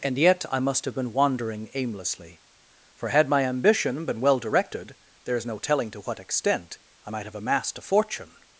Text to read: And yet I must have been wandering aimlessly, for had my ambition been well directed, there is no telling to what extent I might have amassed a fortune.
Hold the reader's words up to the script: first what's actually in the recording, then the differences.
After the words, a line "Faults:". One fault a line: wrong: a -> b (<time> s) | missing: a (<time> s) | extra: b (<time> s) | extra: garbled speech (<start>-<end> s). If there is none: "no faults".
And yet I must have been wandering aimlessly, for had my ambition been well directed, there is no telling to what extent I might have amassed a fortune.
Faults:
no faults